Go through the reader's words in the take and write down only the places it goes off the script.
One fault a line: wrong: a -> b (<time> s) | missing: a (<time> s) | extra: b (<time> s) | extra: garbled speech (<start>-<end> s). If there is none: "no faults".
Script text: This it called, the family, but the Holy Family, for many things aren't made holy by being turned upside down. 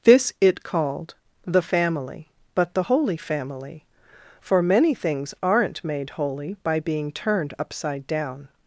no faults